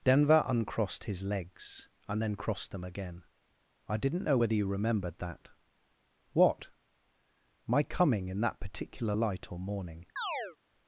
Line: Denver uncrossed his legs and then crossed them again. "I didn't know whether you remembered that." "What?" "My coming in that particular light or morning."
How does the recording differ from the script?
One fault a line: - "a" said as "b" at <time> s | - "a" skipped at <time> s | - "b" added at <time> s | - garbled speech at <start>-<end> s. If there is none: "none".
none